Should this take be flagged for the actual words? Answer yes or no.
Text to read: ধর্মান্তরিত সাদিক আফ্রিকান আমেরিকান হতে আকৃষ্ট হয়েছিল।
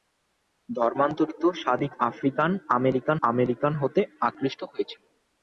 yes